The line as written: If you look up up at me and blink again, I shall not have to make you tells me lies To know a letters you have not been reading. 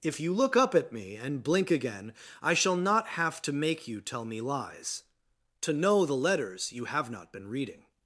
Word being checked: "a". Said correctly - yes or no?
no